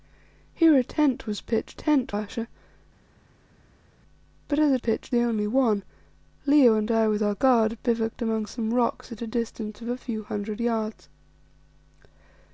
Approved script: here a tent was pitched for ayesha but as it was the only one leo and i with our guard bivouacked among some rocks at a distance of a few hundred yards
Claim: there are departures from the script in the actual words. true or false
true